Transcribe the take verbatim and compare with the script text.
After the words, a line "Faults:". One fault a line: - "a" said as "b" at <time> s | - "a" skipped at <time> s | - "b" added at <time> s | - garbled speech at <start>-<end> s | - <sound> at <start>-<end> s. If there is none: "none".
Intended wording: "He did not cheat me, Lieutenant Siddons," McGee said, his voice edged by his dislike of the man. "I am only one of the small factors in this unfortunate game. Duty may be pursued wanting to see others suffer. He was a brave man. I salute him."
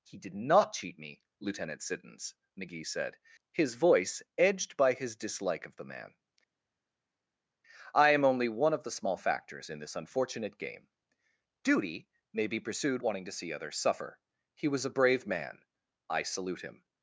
"He did not cheat me, Lieutenant Siddons," McGee said, his voice edged by his dislike of the man. "I am only one of the small factors in this unfortunate game. Duty may be pursued wanting to see others suffer. He was a brave man. I salute him."
Faults:
none